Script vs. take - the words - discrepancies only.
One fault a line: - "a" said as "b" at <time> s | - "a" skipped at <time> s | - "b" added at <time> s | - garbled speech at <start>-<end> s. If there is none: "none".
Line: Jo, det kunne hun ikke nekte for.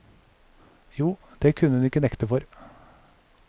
none